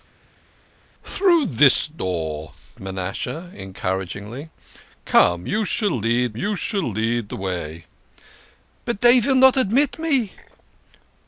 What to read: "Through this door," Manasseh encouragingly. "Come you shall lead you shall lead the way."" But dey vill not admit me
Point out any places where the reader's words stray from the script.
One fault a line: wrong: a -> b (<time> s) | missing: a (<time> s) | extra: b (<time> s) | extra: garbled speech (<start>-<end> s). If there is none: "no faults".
no faults